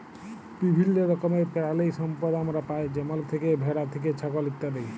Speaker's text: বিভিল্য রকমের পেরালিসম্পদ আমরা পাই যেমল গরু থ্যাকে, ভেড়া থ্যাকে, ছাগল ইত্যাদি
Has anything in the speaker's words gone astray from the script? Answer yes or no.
yes